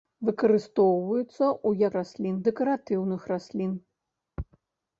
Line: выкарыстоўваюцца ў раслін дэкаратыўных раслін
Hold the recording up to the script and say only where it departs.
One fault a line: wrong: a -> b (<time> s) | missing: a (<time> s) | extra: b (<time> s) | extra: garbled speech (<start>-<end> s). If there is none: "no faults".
no faults